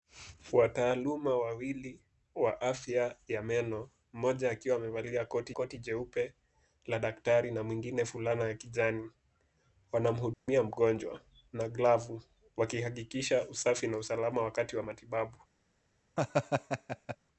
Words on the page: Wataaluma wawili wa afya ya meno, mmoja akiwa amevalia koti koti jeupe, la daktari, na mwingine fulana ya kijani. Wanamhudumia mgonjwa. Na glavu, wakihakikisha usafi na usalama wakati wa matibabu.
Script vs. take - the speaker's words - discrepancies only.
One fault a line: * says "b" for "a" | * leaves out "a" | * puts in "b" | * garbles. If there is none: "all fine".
all fine